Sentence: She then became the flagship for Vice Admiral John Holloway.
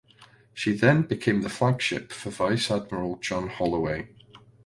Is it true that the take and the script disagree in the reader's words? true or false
false